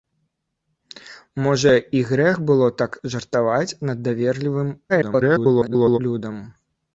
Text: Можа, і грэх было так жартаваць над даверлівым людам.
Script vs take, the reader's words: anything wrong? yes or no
yes